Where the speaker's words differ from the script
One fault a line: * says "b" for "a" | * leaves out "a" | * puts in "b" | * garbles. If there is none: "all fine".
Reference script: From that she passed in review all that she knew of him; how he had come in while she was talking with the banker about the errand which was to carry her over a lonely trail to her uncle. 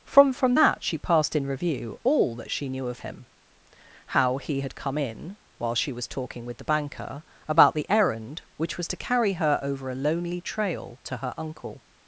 * puts in "from"